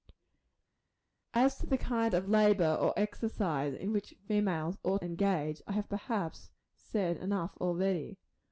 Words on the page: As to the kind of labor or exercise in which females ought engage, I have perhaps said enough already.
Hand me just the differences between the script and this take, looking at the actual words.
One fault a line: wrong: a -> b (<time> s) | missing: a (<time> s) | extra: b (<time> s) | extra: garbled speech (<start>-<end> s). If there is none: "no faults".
no faults